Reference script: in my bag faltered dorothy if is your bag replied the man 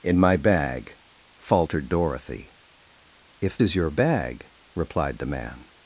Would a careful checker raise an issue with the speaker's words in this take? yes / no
no